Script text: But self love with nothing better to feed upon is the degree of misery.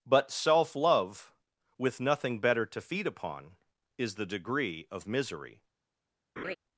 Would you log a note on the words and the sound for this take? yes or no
yes